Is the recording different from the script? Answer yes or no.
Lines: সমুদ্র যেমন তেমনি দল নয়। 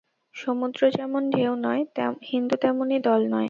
yes